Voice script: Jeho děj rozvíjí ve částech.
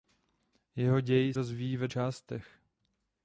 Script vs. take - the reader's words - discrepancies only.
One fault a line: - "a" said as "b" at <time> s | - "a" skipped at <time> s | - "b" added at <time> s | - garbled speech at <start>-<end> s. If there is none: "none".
none